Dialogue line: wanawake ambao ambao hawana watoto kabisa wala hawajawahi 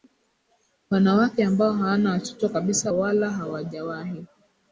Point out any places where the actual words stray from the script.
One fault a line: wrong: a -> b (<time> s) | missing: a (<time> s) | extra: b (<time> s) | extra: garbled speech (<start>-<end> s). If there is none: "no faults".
missing: ambao (1.7 s)